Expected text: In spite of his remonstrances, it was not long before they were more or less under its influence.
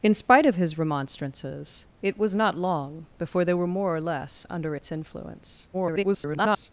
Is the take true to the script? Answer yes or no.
no